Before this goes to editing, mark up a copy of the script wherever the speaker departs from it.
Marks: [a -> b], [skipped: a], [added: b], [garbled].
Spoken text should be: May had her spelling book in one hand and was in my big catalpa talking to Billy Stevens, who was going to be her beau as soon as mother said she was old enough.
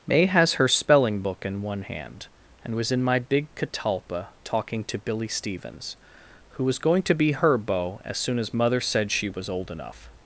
May [had -> has] her spelling book in one hand and was in my big catalpa talking to Billy Stevens, who was going to be her beau as soon as mother said she was old enough.